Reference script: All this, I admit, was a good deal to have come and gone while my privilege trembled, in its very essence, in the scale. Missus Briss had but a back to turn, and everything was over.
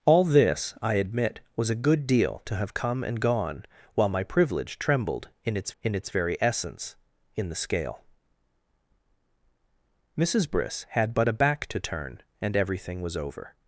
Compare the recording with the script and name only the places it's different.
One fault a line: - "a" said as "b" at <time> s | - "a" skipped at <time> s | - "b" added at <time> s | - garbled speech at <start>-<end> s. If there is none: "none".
- "in its" added at 5.8 s